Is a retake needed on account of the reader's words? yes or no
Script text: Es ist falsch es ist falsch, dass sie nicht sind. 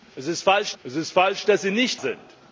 no